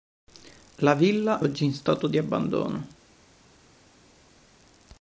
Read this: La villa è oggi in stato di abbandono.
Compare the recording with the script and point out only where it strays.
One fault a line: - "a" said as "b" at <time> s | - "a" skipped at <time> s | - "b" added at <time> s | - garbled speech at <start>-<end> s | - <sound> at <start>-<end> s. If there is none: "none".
- "è" skipped at 1.4 s